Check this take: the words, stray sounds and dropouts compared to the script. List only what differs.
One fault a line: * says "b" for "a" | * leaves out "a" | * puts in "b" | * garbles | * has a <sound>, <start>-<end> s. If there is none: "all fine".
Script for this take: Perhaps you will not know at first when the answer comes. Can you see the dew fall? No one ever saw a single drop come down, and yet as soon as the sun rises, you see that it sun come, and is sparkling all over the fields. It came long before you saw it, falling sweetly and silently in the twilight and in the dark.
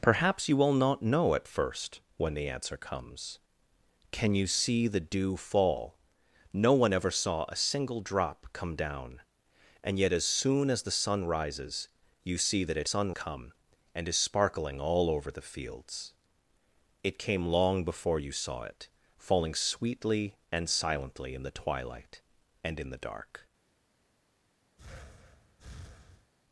* has a breath, 24.8-26.3 s